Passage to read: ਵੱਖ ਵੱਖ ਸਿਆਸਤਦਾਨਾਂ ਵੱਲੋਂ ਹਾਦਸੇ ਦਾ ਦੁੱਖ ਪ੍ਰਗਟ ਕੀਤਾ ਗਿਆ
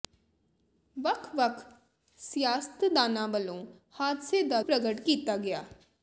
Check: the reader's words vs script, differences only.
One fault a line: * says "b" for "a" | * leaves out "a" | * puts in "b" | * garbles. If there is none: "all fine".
* leaves out "ਦੁੱਖ"